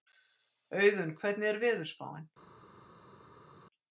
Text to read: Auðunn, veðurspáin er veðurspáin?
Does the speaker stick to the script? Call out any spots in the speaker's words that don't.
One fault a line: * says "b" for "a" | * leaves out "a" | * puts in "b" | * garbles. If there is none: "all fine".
* says "hvernig" for "veðurspáin"